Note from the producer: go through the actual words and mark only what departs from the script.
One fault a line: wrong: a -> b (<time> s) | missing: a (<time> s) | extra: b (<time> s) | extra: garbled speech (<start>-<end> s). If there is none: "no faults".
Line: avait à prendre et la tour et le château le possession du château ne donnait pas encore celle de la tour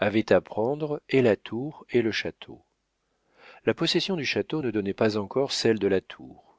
wrong: le -> la (3.6 s)